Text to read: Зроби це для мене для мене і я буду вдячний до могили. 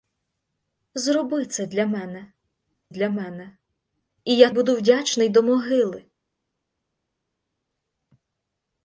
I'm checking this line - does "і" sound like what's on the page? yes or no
yes